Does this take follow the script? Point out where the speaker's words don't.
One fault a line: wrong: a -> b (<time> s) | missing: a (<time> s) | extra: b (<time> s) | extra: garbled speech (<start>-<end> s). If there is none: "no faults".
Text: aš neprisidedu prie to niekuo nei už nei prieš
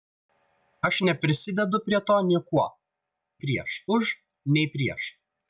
wrong: nei -> prieš (3.4 s)